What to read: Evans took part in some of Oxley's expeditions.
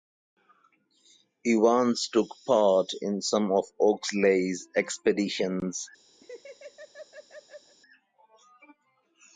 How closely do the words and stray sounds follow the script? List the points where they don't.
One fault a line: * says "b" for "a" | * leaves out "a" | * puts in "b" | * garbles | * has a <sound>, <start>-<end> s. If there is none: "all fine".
* has a laugh, 6.2-7.8 s